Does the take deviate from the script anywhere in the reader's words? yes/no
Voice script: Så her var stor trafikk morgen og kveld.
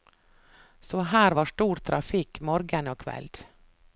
no